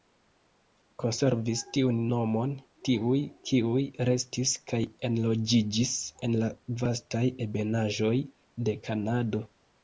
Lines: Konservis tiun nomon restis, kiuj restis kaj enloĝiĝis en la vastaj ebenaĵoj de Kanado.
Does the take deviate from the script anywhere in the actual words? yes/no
yes